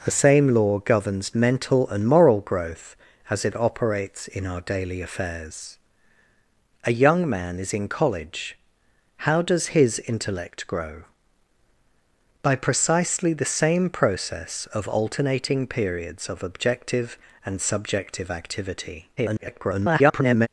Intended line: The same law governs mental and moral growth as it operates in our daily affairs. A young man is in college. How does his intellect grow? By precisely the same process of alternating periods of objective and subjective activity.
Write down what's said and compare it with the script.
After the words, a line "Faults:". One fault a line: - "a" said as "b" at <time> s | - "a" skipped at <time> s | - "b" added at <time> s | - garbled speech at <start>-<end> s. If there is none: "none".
The same law governs mental and moral growth as it operates in our daily affairs. A young man is in college. How does his intellect grow? By precisely the same process of alternating periods of objective and subjective activity. [garbled]
Faults:
- garbled speech at 19.2-20.5 s